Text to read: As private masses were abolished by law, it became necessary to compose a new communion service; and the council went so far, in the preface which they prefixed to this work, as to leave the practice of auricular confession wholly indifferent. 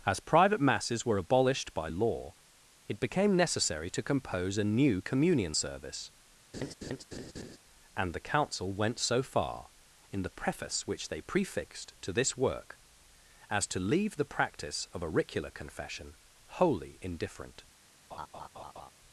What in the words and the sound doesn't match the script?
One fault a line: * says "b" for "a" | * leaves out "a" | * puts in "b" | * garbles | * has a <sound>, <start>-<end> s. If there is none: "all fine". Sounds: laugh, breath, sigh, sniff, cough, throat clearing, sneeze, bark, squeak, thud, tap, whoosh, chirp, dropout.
* has a laugh, 6.5-7.6 s
* has a laugh, 18.1-18.9 s